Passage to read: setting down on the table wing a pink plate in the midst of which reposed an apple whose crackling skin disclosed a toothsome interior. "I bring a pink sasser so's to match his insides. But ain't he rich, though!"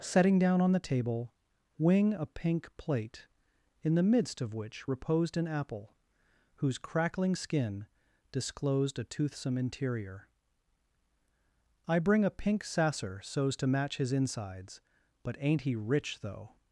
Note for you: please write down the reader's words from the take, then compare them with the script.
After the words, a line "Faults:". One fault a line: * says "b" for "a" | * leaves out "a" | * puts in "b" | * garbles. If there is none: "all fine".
setting down on the table wing a pink plate in the midst of which reposed an apple whose crackling skin disclosed a toothsome interior. "I bring a pink sasser so's to match his insides. But ain't he rich, though!"
Faults:
all fine